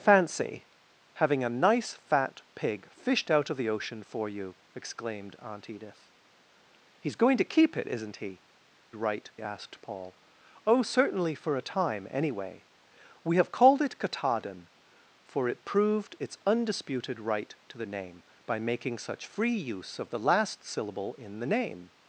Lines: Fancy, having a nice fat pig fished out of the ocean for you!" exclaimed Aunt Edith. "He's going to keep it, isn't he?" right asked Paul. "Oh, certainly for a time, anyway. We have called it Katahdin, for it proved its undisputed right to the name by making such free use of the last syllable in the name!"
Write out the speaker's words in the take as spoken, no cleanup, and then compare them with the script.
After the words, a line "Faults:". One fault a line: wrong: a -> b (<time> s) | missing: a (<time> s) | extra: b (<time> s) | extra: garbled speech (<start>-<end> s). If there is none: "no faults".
Fancy, having a nice fat pig fished out of the ocean for you!" exclaimed Aunt Edith. "He's going to keep it, isn't he?" right asked Paul. "Oh, certainly for a time, anyway. We have called it Katahdin, for it proved its undisputed right to the name by making such free use of the last syllable in the name!"
Faults:
no faults